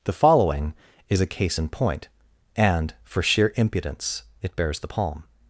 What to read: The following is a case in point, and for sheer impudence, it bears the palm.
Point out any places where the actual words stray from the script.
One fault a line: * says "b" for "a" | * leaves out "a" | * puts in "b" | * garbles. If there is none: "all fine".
all fine